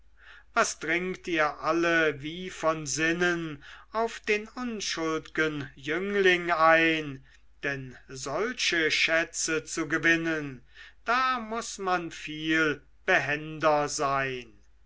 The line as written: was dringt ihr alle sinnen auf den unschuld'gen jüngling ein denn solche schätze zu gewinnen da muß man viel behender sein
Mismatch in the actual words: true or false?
true